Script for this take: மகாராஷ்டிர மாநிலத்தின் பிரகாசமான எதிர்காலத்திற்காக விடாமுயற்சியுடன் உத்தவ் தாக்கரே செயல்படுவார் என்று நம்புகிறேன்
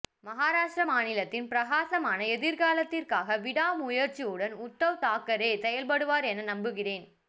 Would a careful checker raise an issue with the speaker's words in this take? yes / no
yes